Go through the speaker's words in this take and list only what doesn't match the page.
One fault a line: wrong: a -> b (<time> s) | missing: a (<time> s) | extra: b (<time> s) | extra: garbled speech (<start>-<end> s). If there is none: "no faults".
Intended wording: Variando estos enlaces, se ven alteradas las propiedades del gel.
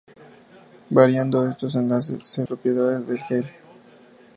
missing: ven alteradas las (2.4 s)